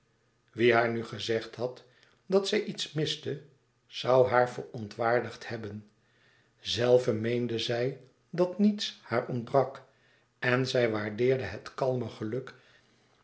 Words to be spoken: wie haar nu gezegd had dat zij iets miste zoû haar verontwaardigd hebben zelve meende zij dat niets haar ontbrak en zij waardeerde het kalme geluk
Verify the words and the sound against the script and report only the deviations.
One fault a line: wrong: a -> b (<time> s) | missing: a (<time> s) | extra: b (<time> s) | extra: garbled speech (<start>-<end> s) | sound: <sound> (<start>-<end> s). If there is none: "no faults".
no faults